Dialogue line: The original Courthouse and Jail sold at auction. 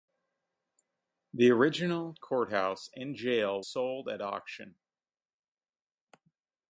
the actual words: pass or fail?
pass